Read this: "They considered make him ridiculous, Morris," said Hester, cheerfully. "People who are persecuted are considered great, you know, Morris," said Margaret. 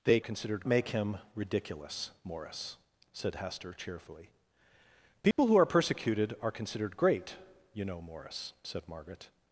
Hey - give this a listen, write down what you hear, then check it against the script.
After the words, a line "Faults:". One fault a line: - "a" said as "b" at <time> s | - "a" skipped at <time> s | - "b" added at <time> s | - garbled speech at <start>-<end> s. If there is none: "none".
"They considered make him ridiculous, Morris," said Hester, cheerfully. "People who are persecuted are considered great, you know, Morris," said Margaret.
Faults:
none